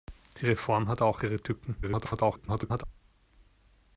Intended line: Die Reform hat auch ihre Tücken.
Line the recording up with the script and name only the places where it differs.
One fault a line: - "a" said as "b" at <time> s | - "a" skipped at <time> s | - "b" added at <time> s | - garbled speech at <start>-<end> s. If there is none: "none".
- garbled speech at 1.8-2.8 s